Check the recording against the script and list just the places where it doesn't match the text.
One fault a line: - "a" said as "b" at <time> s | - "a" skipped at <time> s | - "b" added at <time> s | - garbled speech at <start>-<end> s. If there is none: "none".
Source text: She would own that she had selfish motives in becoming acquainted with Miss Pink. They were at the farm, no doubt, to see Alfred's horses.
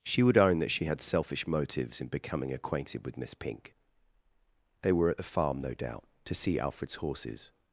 none